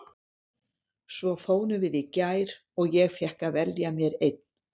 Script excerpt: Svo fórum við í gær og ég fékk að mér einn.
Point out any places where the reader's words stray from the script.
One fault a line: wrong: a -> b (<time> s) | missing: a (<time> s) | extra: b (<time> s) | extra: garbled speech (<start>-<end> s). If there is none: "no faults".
extra: velja (3.6 s)